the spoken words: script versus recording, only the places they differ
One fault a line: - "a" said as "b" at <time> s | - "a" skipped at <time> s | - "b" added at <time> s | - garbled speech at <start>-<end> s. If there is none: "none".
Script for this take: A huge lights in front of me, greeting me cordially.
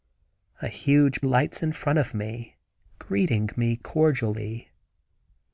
none